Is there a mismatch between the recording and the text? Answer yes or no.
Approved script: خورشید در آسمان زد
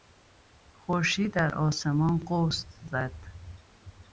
yes